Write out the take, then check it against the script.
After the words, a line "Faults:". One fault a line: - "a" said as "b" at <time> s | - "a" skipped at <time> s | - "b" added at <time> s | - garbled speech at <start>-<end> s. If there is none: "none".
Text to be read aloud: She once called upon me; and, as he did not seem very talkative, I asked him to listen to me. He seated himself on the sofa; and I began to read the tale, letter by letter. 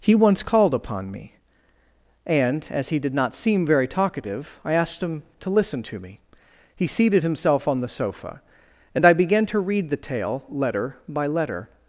He once called upon me; and, as he did not seem very talkative, I asked him to listen to me. He seated himself on the sofa; and I began to read the tale, letter by letter.
Faults:
- "She" said as "He" at 0.0 s